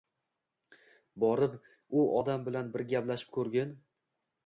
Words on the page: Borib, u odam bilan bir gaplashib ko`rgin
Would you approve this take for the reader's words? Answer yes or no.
yes